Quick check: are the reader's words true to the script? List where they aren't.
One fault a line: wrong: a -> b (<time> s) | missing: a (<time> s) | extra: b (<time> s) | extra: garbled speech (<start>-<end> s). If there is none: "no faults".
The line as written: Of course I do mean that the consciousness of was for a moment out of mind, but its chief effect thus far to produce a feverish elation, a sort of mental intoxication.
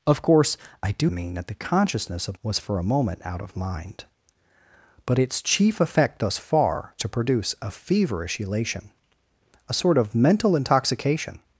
no faults